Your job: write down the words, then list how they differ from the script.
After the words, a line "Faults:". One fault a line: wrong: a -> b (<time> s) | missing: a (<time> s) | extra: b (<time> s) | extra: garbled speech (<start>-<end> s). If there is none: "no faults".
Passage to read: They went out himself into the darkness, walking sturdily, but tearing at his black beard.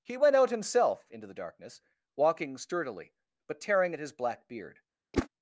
He went out himself into the darkness, walking sturdily, but tearing at his black beard.
Faults:
wrong: They -> He (0.0 s)